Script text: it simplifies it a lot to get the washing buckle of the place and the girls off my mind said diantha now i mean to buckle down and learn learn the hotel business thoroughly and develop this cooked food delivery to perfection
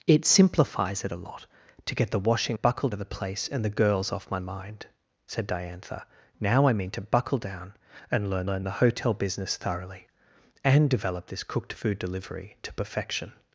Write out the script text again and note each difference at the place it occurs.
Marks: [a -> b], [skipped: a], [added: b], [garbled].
it simplifies it a lot to get the washing buckle of the place and the girls off my mind said diantha now i mean to buckle down and learn learn the hotel business thoroughly and develop this cooked food delivery to perfection